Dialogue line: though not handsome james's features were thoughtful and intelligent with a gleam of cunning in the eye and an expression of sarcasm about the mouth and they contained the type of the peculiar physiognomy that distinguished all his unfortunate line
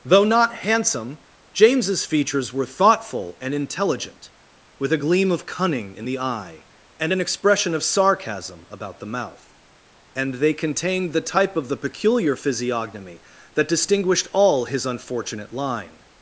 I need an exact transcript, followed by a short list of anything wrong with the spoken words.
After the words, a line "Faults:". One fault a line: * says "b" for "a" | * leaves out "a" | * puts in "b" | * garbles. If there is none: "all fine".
though not handsome james's features were thoughtful and intelligent with a gleam of cunning in the eye and an expression of sarcasm about the mouth and they contained the type of the peculiar physiognomy that distinguished all his unfortunate line
Faults:
all fine